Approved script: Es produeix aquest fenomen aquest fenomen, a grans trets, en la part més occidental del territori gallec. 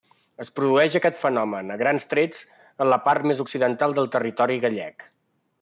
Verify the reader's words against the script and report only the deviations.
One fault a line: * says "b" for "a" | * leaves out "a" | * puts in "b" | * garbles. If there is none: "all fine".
* leaves out "aquest fenomen"